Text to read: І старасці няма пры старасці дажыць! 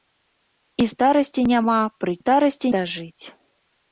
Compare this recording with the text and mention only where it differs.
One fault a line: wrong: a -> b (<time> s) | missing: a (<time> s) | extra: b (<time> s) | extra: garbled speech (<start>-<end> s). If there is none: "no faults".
no faults